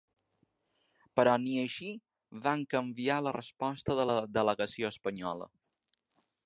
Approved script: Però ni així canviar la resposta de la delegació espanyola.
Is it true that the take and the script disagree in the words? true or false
true